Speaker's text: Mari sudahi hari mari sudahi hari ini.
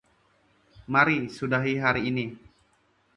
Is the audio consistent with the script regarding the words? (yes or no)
no